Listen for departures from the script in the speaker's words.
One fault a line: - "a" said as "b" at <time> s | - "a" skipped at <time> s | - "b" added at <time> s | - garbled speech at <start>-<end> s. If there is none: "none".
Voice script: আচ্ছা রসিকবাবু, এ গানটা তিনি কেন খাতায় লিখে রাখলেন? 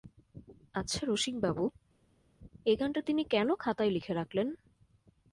none